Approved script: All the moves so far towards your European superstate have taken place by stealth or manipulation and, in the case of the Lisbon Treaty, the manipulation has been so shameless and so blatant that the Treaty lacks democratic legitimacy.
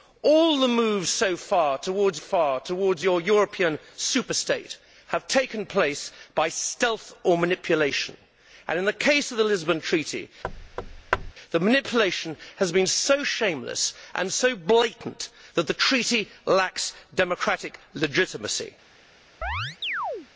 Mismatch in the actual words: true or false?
true